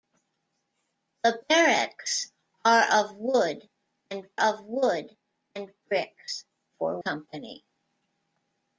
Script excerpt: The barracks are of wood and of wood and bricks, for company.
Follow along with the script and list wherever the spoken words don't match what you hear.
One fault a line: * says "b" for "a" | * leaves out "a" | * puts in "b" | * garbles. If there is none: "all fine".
all fine